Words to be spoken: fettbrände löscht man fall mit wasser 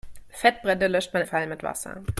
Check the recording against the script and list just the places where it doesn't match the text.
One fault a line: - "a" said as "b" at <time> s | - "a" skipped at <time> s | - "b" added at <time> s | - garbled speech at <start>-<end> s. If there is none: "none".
none